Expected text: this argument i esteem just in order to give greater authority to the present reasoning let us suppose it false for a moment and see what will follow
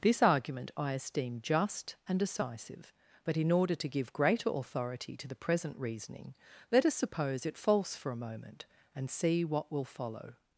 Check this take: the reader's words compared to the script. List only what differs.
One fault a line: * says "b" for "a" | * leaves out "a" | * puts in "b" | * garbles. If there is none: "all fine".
* puts in "and decisive but"